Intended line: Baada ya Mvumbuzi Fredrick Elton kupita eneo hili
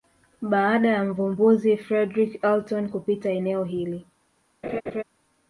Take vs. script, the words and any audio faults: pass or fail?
fail